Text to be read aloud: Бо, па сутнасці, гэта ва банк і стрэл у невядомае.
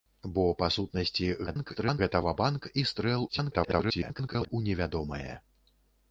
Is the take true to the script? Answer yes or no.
no